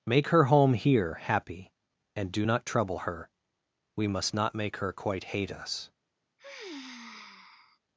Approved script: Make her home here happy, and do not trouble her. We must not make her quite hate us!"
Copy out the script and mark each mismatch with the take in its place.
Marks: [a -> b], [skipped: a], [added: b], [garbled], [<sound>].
Make her home here happy, and do not trouble her. We must not make her quite hate us!" [sigh]